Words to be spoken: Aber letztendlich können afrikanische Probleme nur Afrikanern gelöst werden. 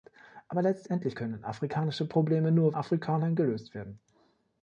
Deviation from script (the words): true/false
false